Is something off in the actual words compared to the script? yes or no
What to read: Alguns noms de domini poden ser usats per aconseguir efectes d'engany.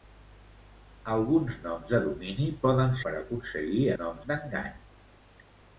yes